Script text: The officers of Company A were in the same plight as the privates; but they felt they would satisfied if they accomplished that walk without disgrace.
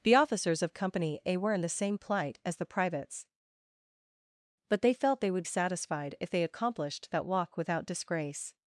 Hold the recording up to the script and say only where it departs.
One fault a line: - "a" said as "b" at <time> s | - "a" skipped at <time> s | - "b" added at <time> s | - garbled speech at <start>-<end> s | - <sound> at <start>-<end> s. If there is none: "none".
none